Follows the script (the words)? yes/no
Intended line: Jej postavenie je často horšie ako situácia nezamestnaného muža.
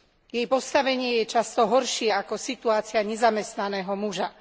yes